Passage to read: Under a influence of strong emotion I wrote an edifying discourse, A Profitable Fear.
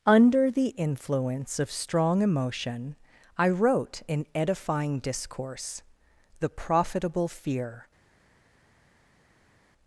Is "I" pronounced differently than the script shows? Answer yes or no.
no